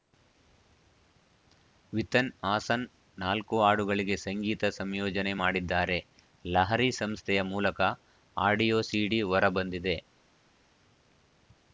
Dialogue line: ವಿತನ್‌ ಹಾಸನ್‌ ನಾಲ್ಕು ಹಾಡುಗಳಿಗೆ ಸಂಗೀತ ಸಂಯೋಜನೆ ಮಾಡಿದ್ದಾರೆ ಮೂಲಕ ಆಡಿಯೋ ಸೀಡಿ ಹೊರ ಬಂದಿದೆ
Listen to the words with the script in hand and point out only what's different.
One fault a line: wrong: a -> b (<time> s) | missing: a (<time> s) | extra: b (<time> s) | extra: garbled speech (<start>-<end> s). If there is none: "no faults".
extra: ಲಹರಿ ಸಂಸ್ಥೆಯ (6.4 s)